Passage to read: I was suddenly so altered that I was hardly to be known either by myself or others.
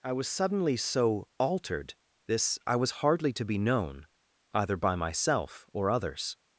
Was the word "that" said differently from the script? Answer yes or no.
yes